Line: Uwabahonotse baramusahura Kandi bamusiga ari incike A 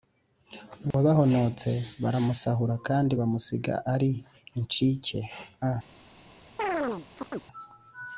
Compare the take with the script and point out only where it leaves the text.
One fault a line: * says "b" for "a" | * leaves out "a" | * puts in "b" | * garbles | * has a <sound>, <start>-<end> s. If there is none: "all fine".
* has a dropout, 0.9-0.9 s
* has a chirp, 6.6-7.4 s